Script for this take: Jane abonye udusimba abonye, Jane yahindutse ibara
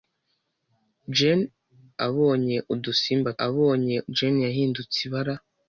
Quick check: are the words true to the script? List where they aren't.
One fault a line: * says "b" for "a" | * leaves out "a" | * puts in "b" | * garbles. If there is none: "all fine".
all fine